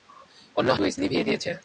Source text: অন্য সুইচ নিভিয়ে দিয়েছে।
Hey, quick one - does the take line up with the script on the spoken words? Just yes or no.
yes